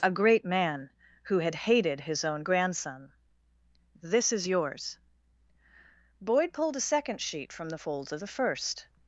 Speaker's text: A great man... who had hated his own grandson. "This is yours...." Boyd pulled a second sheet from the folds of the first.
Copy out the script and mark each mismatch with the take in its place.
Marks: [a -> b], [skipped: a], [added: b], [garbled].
A great man... who had hated his own grandson. "This is yours...." Boyd pulled a second sheet from the folds of the first.